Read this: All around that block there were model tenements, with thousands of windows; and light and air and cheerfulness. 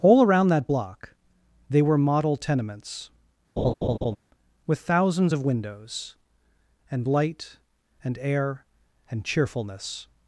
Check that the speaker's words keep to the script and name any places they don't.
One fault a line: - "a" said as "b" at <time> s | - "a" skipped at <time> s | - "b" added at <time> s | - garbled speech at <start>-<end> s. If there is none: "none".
- "there" said as "they" at 1.7 s